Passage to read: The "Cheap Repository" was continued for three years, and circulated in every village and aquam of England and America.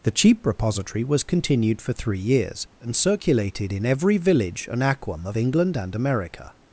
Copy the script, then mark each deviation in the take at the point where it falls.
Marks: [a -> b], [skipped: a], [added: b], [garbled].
The "Cheap Repository" was continued for three years, and circulated in every village and aquam of England and America.